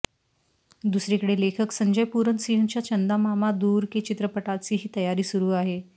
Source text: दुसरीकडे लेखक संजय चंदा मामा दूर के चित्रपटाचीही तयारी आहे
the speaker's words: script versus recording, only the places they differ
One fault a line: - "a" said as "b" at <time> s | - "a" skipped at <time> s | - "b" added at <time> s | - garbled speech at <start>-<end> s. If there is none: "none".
- "पूरन सिंहच्या" added at 2.1 s
- "सुरू" added at 5.2 s